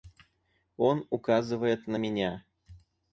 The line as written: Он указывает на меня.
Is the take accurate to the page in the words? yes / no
yes